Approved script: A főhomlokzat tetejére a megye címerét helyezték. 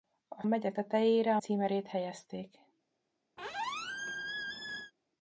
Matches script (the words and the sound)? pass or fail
fail